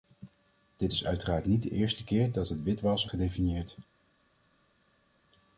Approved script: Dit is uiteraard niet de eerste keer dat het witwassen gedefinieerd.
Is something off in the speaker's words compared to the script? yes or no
no